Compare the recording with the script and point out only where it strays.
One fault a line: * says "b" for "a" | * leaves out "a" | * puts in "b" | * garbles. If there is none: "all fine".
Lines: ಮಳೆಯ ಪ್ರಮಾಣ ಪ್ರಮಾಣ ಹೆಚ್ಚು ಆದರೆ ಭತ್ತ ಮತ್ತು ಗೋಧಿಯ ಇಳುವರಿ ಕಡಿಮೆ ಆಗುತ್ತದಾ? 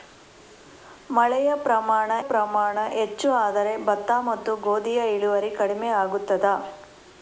all fine